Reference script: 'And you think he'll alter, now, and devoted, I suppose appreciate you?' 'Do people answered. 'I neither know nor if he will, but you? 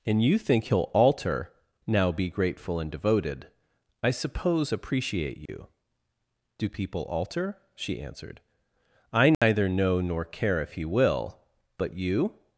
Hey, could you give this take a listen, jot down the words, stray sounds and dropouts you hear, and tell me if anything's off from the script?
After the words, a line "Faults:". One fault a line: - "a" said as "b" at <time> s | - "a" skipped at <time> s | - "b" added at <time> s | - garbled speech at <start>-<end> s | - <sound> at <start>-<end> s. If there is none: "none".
'And you think he'll alter, now, be grateful and devoted, I suppose appreciate you?' 'Do people alter?' she answered. 'I neither know nor care if he will, but you?
Faults:
- "be grateful" added at 2.1 s
- dropout at 5.5-5.5 s
- "alter she" added at 7.0 s
- dropout at 9.3-9.4 s
- "care" added at 10.2 s